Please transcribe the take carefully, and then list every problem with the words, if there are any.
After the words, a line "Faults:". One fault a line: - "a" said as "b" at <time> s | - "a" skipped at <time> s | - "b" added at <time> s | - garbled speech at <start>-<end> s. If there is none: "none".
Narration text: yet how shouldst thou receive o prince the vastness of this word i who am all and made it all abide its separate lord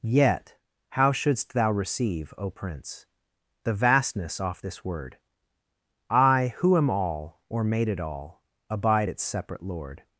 yet how shouldst thou receive o prince the vastness off this word i who am all or made it all abide its separate lord
Faults:
- "of" said as "off" at 4.4 s
- "and" said as "or" at 7.5 s